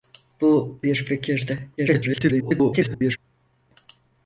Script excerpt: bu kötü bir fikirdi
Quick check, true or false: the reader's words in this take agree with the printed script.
false